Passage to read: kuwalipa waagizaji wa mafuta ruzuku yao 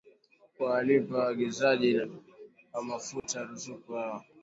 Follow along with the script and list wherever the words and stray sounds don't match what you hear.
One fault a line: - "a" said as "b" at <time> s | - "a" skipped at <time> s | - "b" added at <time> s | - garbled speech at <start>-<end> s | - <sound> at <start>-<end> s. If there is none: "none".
- dropout at 3.2-3.2 s